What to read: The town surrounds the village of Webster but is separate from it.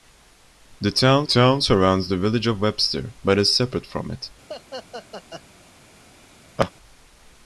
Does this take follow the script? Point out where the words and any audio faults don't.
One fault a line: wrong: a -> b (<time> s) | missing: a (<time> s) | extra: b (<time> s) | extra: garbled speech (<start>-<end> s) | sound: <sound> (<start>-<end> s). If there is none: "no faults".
extra: town (1.2 s)
sound: laugh (4.5-5.4 s)
sound: laugh (6.6-6.7 s)